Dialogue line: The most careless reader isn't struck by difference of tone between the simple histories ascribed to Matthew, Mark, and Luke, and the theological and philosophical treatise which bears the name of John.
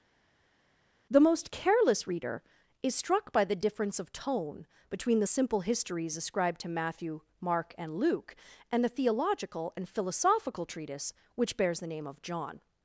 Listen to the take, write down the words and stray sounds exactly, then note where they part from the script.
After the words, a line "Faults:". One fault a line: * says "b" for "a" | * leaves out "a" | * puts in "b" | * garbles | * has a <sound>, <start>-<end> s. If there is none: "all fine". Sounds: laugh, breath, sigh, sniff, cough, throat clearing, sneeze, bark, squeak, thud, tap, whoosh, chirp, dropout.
The most careless reader is struck by the difference of tone between the simple histories ascribed to Matthew, Mark, and Luke, and the theological and philosophical treatise which bears the name of John.
Faults:
* says "is" for "isn't"
* puts in "the"